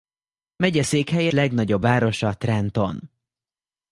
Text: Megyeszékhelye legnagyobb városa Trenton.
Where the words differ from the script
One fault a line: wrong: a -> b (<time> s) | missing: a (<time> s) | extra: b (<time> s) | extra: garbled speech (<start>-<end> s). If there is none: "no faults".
no faults